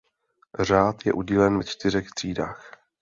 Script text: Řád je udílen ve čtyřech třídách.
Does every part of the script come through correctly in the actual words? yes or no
yes